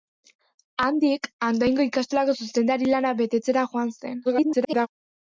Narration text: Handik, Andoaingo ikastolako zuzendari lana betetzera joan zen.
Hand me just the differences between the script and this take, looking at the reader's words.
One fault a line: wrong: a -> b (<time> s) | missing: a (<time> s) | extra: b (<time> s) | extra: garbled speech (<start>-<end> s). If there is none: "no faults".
extra: garbled speech (4.2-4.9 s)